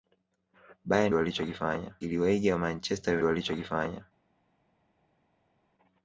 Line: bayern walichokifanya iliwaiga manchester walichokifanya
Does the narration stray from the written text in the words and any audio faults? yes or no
no